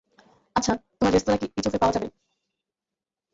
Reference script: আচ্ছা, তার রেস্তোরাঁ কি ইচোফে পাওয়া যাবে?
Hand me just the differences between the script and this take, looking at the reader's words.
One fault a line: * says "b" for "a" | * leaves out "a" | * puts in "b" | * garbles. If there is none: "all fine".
* says "তোমার" for "তার"